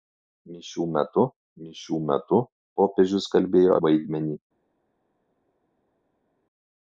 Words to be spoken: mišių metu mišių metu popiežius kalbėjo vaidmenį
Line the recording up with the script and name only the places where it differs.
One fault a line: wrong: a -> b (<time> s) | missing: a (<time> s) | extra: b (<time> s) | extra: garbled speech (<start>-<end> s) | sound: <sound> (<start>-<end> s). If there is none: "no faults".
no faults